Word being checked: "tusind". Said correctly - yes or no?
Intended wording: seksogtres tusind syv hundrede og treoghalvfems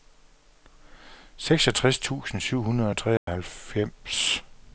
yes